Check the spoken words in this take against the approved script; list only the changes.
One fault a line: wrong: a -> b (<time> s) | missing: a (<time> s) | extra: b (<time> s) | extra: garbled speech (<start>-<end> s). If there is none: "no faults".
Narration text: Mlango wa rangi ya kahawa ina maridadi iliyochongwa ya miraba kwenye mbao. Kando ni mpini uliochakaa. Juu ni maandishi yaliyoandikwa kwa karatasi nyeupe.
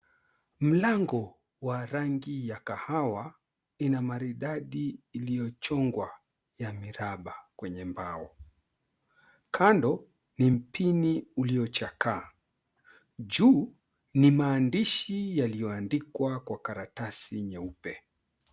no faults